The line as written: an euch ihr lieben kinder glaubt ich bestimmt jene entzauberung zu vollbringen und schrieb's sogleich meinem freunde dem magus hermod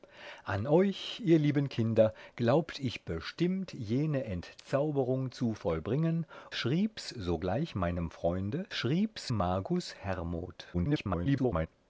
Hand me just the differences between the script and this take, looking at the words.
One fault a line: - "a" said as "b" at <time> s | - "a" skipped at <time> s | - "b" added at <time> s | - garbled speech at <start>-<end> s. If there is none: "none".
- "und" skipped at 6.2 s
- "dem" said as "schrieb's" at 8.7 s
- garbled speech at 10.7-11.7 s